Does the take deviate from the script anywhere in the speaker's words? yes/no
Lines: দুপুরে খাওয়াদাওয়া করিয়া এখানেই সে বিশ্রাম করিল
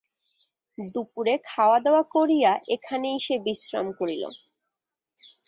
no